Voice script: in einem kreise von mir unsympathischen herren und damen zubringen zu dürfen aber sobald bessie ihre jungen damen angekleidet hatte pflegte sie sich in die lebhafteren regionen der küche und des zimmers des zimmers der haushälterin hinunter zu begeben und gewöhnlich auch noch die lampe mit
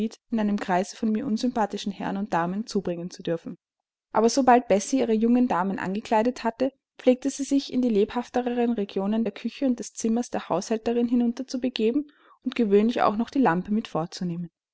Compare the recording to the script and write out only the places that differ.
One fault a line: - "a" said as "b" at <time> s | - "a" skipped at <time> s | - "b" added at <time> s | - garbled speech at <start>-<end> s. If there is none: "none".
- "des zimmers" skipped at 10.3 s